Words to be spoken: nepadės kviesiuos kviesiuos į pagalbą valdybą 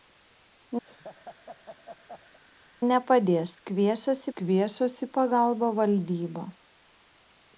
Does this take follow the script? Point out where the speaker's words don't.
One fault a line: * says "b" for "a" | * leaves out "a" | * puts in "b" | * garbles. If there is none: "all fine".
all fine